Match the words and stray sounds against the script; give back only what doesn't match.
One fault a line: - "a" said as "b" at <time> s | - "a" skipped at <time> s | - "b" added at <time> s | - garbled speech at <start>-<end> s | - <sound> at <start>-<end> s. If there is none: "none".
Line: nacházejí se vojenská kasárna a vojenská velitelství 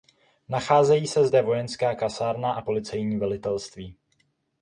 - "zde" added at 1.3 s
- "vojenská" said as "policejní" at 2.6 s